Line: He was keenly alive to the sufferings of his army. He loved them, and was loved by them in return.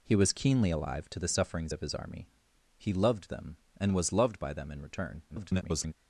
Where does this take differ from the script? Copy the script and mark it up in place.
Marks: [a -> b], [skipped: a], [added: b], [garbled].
He was keenly alive to the sufferings of his army. He loved them, and was loved by them in return. [garbled]